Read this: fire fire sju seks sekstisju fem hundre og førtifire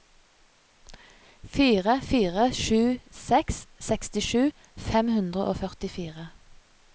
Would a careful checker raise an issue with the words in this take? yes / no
no